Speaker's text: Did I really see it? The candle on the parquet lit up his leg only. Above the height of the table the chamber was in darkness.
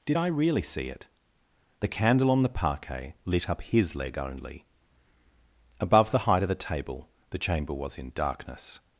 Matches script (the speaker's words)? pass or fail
pass